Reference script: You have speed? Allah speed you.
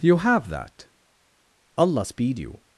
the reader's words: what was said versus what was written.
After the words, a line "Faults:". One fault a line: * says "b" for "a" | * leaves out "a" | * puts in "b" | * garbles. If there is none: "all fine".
You have that? Allah speed you.
Faults:
* says "that" for "speed"